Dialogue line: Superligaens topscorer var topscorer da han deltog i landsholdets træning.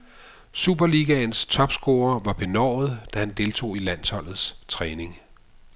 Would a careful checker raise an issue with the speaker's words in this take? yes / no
yes